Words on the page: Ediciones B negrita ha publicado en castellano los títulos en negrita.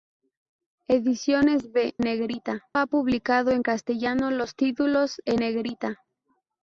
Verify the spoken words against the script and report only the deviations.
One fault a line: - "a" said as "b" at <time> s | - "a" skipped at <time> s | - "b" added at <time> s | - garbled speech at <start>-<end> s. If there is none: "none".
none